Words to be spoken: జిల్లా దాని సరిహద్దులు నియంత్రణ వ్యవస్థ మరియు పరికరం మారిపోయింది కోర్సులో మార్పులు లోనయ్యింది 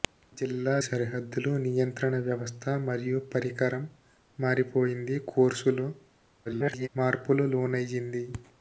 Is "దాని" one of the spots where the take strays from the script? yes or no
yes